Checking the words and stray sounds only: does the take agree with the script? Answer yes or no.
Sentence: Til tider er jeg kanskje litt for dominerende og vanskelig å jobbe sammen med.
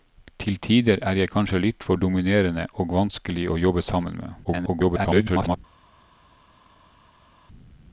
no